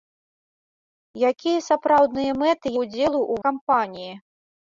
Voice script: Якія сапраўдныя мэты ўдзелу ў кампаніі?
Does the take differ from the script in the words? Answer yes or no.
no